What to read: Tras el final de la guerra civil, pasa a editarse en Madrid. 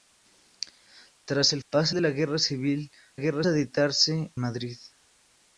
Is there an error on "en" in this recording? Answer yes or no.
yes